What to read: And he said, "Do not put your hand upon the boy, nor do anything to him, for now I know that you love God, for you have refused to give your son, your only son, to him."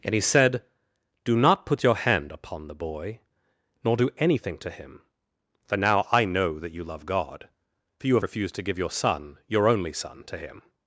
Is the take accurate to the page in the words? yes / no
yes